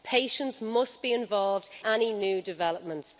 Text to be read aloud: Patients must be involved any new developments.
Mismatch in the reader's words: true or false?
false